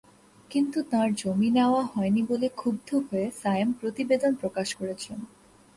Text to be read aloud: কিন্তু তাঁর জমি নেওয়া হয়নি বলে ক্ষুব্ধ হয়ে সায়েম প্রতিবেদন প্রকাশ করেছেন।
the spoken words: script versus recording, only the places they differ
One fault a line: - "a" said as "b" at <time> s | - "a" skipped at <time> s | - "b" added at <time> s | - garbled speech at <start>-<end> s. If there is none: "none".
none